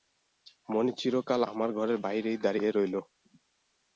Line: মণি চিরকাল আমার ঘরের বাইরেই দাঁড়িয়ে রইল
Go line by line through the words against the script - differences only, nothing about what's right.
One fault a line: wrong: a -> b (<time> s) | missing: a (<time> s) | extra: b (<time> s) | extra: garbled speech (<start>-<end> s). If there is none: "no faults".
no faults